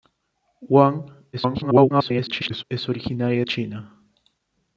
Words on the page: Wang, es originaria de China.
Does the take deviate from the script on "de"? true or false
true